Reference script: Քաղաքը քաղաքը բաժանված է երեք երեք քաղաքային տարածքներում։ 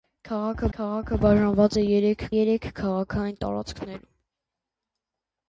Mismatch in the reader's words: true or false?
false